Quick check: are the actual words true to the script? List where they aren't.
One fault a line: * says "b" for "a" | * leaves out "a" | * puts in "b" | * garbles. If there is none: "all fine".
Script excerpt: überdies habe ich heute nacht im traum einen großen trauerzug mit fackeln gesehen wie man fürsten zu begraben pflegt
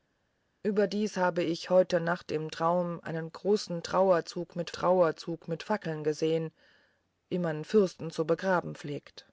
* puts in "trauerzug mit"